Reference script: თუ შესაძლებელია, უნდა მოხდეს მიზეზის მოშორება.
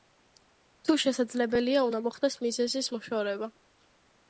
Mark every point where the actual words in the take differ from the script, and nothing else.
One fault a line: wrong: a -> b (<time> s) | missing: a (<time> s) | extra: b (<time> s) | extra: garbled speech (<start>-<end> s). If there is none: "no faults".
no faults